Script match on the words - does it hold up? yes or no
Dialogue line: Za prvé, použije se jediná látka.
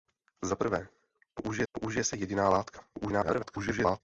no